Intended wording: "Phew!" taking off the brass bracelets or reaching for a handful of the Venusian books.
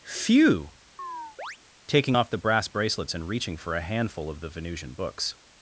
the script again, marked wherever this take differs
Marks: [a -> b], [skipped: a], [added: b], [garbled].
"Phew!" taking off the brass bracelets [or -> and] reaching for a handful of the Venusian books.